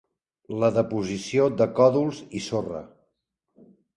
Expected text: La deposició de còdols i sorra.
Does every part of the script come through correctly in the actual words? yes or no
yes